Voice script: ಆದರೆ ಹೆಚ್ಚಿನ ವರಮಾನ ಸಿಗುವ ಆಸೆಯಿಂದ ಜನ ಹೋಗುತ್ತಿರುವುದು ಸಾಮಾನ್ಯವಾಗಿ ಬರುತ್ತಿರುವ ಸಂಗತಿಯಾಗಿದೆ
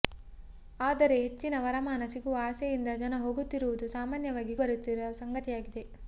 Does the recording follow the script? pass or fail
pass